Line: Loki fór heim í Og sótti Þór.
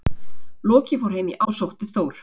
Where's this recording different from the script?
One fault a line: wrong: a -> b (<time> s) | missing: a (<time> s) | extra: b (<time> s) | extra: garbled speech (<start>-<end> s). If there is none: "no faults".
no faults